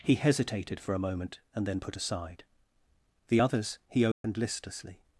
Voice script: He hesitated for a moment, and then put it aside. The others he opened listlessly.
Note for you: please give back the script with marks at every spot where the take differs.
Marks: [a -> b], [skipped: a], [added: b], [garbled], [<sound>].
He hesitated for a moment, and then put [skipped: it] aside. The others he opened [dropout] listlessly.